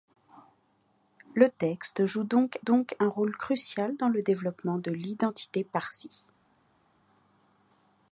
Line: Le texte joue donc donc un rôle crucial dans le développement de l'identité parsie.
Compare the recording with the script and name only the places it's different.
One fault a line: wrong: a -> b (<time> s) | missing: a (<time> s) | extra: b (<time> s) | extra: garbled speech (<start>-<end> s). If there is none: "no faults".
no faults